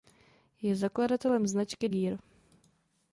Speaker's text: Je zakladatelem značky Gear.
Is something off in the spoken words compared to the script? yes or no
no